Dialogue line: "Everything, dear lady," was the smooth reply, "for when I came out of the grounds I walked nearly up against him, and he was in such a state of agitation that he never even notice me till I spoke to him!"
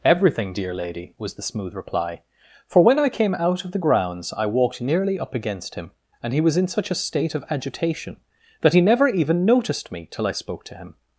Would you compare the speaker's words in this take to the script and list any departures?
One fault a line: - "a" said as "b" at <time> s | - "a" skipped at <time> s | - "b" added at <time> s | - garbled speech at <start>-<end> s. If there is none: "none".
- "notice" said as "noticed" at 9.4 s